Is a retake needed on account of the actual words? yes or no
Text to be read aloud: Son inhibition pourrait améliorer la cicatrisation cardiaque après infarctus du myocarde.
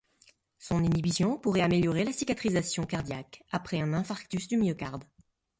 yes